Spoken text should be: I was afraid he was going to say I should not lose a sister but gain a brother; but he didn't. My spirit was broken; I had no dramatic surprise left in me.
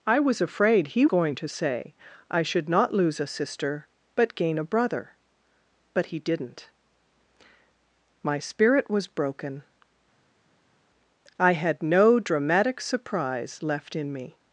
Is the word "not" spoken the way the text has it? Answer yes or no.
yes